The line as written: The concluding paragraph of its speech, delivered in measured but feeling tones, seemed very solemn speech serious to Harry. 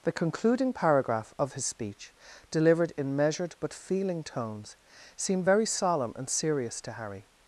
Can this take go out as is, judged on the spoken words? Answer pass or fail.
fail